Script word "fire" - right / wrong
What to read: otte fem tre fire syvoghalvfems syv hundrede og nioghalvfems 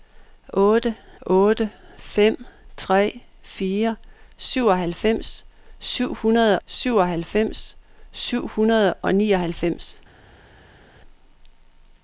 right